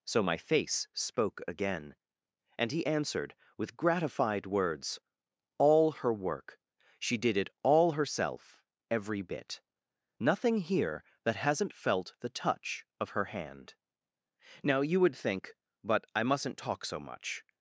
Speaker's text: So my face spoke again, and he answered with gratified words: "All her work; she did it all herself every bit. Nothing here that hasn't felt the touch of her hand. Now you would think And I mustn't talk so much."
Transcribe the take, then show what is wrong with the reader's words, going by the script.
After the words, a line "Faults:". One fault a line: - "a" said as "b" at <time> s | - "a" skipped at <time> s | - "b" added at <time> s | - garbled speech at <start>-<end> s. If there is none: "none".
So my face spoke again, and he answered with gratified words: "All her work; she did it all herself every bit. Nothing here that hasn't felt the touch of her hand. Now you would think But I mustn't talk so much."
Faults:
- "And" said as "But" at 15.8 s